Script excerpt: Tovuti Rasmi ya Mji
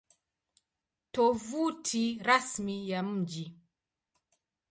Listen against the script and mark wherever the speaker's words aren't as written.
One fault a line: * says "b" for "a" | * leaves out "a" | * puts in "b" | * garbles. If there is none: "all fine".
all fine